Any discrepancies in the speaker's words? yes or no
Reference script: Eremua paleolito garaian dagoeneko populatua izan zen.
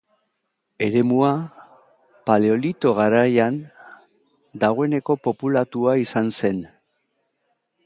no